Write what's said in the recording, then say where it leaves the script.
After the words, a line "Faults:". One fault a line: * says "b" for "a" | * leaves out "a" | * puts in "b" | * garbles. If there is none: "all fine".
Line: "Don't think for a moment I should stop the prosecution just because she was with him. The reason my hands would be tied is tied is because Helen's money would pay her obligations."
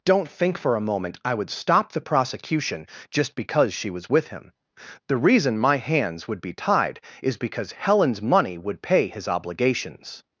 "Don't think for a moment I would stop the prosecution just because she was with him. The reason my hands would be tied is because Helen's money would pay his obligations."
Faults:
* says "would" for "should"
* leaves out "tied is"
* says "his" for "her"